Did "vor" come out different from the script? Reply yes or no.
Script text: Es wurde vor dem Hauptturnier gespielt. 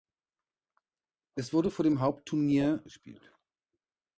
no